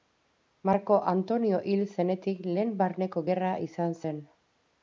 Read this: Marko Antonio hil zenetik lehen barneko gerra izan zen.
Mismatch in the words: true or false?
false